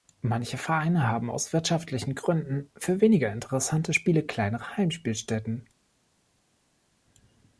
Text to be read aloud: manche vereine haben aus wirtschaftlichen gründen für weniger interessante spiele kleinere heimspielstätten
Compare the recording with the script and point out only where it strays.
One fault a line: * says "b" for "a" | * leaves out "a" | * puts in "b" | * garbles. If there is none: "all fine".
all fine